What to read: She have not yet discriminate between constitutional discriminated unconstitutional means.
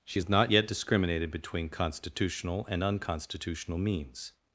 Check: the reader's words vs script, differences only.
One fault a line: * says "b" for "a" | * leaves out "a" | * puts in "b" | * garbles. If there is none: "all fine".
* says "has" for "have"
* says "discriminated" for "discriminate"
* says "and" for "discriminated"